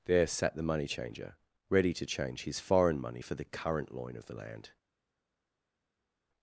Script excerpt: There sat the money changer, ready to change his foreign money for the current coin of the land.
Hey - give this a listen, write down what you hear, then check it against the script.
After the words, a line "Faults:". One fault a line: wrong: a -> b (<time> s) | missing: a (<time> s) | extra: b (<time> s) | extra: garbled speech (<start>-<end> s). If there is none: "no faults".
There sat the money changer, ready to change his foreign money for the current loin of the land.
Faults:
wrong: coin -> loin (3.9 s)